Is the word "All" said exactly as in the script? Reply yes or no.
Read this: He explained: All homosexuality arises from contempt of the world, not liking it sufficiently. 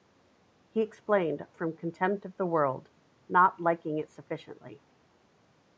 no